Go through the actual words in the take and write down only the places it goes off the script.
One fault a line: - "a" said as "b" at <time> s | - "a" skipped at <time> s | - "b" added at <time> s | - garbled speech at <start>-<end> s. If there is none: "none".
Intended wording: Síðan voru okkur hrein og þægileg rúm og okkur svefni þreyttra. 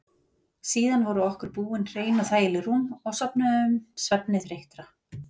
- "búin" added at 1.6 s
- "okkur" said as "sofnuðum" at 3.2 s